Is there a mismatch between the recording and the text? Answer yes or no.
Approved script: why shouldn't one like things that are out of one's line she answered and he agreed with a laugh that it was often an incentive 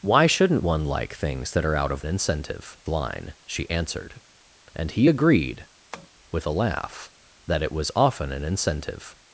yes